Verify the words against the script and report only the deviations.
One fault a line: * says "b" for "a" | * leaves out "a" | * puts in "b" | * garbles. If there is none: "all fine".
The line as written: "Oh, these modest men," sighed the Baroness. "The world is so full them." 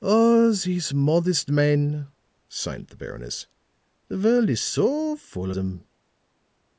all fine